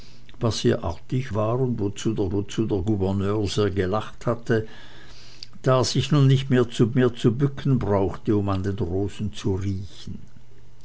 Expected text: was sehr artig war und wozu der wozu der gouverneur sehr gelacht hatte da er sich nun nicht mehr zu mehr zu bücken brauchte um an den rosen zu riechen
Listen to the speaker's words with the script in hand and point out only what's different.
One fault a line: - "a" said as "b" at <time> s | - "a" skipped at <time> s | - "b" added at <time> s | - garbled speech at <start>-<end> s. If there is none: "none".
none